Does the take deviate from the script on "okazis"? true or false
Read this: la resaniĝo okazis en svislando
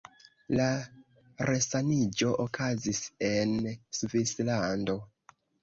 false